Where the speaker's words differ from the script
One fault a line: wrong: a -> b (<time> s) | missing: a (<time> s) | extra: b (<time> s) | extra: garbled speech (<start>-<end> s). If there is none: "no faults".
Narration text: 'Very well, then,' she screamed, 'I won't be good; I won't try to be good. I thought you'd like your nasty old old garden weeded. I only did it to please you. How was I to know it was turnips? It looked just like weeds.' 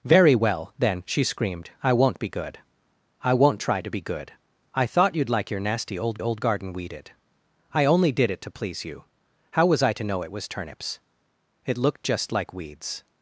no faults